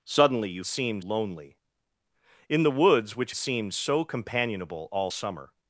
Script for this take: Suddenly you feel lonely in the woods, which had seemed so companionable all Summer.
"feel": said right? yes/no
no